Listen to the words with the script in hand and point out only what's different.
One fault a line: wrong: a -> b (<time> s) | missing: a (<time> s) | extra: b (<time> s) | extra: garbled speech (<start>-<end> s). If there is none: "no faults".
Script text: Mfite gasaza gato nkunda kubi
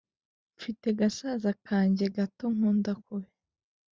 extra: kanjye (1.7 s)